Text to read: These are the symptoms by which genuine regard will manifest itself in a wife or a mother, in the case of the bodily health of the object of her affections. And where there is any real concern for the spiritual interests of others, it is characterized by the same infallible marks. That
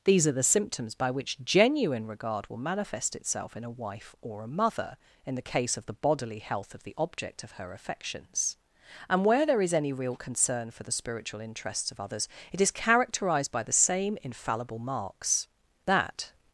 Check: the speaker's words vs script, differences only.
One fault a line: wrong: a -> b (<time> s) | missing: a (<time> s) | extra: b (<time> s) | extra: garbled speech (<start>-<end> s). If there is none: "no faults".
no faults